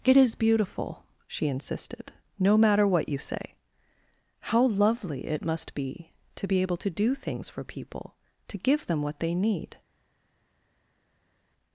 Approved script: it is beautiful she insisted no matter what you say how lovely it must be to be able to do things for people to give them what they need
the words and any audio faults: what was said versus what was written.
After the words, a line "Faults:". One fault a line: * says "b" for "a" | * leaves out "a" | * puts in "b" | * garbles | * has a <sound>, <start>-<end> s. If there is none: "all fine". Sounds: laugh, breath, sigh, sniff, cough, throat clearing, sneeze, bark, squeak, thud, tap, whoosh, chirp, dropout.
it is beautiful she insisted no matter what you say how lovely it must be to be able to do things for people to give them what they need
Faults:
all fine